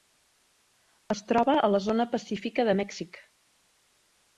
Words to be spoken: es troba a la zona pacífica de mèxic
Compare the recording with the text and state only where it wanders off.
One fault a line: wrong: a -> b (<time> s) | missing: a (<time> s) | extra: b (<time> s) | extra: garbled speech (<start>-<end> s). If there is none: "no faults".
no faults